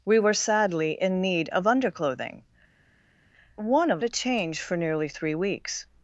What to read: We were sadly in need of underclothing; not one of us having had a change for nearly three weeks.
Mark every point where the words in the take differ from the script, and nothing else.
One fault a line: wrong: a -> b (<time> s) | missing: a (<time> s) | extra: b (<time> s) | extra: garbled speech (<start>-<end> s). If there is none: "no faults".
missing: not (2.4 s)
missing: us having had (4.0 s)